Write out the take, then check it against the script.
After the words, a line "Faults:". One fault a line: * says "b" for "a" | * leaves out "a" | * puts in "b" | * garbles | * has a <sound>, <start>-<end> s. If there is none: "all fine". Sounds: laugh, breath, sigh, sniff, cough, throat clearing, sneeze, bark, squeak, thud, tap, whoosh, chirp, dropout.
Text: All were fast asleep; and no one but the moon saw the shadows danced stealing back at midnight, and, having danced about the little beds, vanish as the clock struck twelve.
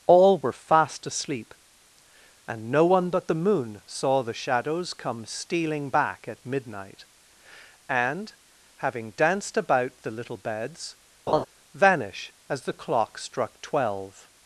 All were fast asleep; and no one but the moon saw the shadows come stealing back at midnight, and, having danced about the little beds, vanish as the clock struck twelve.
Faults:
* says "come" for "danced"
* has a laugh, 11.3-11.4 s